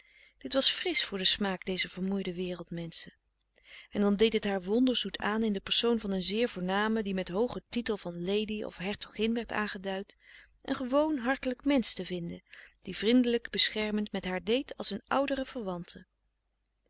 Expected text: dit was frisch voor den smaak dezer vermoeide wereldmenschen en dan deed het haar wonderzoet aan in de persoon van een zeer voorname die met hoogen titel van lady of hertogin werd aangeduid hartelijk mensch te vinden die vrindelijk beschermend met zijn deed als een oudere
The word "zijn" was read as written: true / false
false